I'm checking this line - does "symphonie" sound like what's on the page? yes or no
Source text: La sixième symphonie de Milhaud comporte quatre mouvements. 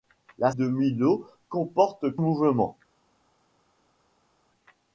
no